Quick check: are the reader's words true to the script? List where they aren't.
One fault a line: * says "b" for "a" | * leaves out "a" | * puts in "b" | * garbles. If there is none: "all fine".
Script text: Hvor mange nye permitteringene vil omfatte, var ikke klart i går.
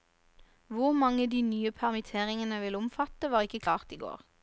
* puts in "de"